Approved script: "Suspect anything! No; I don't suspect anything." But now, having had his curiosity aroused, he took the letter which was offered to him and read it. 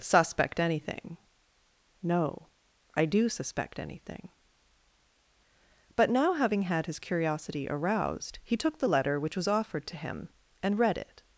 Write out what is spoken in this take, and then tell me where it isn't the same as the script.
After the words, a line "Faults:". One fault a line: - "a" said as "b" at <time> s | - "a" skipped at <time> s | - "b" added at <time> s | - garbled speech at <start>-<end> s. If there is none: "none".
"Suspect anything! No; I do suspect anything." But now, having had his curiosity aroused, he took the letter which was offered to him and read it.
Faults:
- "don't" said as "do" at 3.0 s